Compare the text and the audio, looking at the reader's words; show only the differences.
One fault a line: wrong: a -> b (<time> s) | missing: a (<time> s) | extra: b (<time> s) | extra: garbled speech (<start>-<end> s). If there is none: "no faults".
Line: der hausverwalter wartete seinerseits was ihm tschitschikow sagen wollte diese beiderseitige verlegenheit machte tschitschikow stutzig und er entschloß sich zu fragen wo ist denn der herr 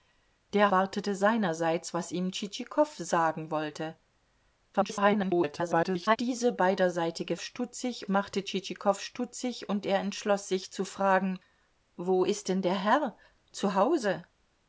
missing: hausverwalter (0.7 s)
extra: garbled speech (4.7-6.2 s)
wrong: verlegenheit -> stutzig (7.4 s)